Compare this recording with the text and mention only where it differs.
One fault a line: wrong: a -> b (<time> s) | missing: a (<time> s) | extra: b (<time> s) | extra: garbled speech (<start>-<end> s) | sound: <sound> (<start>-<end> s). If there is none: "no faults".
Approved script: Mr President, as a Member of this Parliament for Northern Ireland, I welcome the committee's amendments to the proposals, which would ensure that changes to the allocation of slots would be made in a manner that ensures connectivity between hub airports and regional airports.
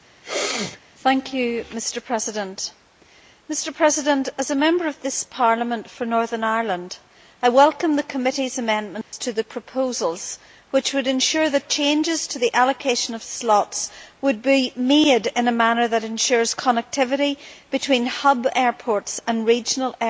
sound: sneeze (0.2-0.8 s)
sound: dropout (9.0-9.1 s)